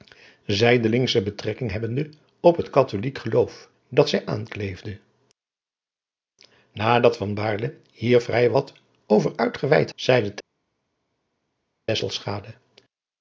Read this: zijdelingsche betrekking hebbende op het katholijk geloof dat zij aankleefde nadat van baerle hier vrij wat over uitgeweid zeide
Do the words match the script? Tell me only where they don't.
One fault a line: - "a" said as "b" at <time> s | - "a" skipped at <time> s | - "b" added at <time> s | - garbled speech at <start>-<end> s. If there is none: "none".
none